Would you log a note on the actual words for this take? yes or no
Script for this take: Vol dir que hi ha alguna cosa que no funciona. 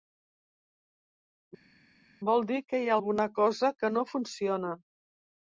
no